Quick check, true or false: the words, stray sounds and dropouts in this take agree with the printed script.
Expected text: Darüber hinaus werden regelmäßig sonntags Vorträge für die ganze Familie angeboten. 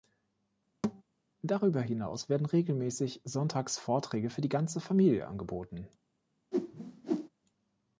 false